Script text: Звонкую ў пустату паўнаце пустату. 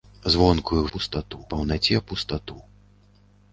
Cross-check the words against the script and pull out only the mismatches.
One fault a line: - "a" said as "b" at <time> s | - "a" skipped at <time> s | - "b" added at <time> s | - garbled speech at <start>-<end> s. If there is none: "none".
none